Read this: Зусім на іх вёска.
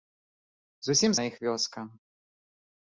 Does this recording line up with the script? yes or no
yes